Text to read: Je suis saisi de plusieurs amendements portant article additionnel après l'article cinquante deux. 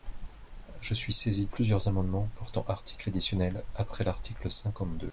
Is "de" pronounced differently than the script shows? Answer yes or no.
yes